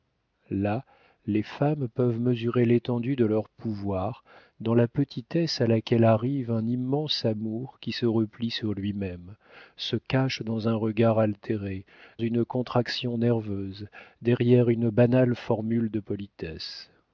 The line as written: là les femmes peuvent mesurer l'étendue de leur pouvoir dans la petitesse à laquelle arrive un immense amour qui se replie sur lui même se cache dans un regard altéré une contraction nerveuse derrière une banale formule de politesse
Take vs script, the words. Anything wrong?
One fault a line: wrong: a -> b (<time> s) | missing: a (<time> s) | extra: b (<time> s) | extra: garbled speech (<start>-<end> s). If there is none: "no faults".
no faults